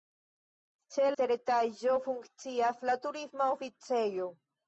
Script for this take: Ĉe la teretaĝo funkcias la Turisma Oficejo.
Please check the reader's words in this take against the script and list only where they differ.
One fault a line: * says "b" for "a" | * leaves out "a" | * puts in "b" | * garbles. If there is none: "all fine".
* leaves out "la"